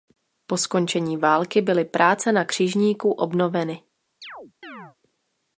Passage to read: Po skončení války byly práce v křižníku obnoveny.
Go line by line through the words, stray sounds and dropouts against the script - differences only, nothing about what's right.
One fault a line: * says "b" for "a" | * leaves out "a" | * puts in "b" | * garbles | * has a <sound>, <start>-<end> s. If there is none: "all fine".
* says "na" for "v"
* has a chirp, 4.2-5.0 s